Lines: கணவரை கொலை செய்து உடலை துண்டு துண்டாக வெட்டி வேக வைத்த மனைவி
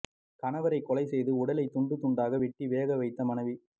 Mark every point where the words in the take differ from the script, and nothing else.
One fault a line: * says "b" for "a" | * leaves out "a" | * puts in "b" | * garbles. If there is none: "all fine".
all fine